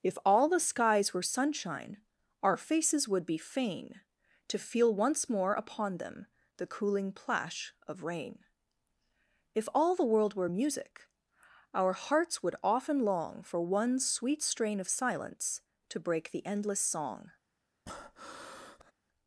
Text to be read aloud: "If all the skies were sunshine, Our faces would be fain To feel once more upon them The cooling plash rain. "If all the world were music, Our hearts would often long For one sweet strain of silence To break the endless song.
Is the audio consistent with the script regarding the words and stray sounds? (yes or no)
no